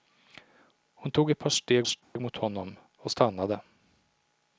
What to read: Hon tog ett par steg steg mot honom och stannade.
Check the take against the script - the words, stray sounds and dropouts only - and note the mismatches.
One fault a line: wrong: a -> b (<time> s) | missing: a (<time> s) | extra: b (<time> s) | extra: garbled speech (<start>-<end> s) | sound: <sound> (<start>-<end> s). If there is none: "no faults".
sound: dropout (2.0-2.2 s)